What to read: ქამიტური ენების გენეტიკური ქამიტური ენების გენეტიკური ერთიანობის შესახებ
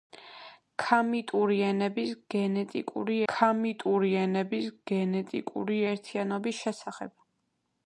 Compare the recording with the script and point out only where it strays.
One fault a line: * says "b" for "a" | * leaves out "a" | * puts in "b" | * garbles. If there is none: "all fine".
all fine